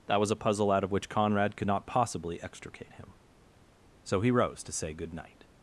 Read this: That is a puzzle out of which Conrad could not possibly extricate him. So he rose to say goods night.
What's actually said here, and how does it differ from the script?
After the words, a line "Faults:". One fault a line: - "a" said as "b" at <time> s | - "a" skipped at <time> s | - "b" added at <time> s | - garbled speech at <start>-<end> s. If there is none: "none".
That was a puzzle out of which Conrad could not possibly extricate him. So he rose to say good night.
Faults:
- "is" said as "was" at 0.2 s
- "goods" said as "good" at 4.9 s